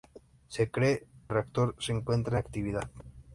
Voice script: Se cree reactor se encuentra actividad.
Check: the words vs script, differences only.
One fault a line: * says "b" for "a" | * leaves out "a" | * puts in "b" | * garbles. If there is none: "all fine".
all fine